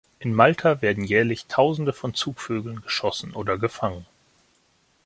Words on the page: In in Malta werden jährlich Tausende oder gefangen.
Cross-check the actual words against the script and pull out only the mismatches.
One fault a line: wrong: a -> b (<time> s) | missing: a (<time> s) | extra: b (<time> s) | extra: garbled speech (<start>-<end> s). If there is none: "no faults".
missing: in (0.3 s)
extra: von Zugvögeln geschossen (1.9 s)